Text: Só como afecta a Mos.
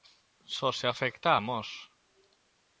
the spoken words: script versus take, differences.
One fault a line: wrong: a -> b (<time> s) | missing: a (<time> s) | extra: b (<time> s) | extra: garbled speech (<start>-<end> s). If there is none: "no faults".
wrong: como -> se (0.7 s)